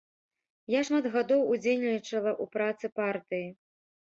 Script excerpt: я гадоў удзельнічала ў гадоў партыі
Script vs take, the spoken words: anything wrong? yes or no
yes